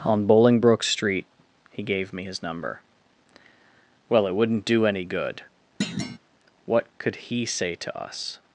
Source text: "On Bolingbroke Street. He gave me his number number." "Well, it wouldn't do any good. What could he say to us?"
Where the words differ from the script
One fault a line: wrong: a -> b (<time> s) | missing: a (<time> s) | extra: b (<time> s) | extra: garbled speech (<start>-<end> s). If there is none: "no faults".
missing: number (2.8 s)